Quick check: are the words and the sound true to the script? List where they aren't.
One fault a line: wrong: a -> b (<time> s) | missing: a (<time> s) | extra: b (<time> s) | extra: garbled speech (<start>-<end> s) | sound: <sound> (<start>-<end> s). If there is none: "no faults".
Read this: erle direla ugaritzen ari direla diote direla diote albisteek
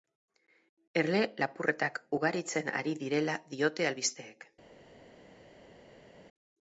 wrong: direla -> lapurretak (1.4 s)
missing: direla diote (3.9 s)